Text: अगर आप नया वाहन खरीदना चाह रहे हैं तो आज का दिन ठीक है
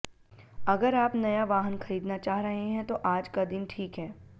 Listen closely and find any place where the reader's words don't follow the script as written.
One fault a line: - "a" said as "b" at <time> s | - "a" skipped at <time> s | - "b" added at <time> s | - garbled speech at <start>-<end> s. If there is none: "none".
none